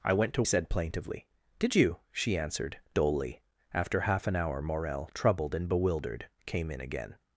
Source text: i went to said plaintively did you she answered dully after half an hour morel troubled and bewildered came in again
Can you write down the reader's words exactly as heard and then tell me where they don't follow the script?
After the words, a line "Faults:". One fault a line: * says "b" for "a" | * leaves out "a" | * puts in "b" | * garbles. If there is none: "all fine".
i went to said plaintively did you she answered dully after half an hour morel troubled and bewildered came in again
Faults:
all fine